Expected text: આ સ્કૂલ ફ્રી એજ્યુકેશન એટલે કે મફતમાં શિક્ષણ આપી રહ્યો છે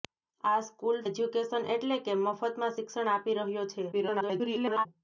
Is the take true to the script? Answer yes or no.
no